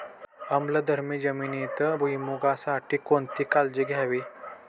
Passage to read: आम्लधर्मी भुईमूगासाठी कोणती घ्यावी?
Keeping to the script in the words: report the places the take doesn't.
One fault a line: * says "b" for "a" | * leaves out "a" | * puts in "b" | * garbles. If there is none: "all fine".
* puts in "जमिनीत"
* puts in "काळजी"